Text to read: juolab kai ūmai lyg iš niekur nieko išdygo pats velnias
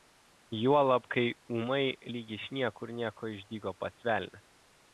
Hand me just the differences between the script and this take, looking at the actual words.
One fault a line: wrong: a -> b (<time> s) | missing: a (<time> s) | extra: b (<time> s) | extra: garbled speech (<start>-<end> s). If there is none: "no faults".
no faults